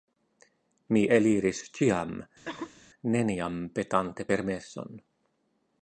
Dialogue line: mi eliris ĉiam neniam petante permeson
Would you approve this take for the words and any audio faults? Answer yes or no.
no